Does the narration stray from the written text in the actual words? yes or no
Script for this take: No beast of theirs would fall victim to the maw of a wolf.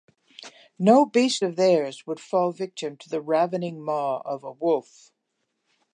yes